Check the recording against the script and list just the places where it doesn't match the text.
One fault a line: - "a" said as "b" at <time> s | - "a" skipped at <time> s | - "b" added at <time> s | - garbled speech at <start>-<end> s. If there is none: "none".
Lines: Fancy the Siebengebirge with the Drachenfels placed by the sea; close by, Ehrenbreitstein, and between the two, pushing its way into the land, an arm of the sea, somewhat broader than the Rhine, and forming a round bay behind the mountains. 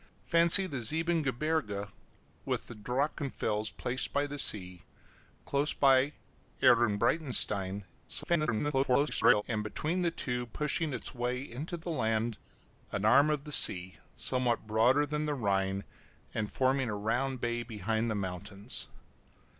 - garbled speech at 8.1-9.4 s